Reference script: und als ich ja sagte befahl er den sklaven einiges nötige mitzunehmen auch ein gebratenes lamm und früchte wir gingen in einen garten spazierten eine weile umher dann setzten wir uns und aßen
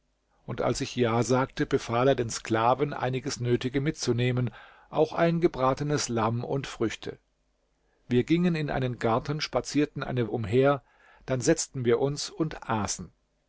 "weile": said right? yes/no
no